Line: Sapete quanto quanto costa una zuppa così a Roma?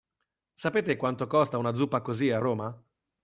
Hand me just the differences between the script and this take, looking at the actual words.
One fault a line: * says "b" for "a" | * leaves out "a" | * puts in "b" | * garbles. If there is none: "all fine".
* leaves out "quanto"